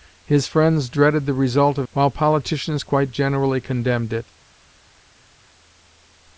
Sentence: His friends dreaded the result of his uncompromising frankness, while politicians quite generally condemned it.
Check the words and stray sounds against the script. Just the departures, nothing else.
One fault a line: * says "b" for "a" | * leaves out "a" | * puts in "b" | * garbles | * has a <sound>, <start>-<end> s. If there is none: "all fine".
* leaves out "his uncompromising frankness"